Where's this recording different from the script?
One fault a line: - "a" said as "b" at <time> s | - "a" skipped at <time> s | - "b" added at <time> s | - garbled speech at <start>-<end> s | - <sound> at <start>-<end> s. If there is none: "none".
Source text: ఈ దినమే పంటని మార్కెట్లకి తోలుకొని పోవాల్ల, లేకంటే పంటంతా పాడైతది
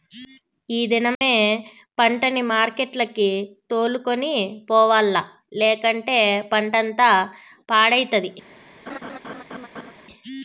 - dropout at 1.1-1.2 s
- laugh at 8.9-9.9 s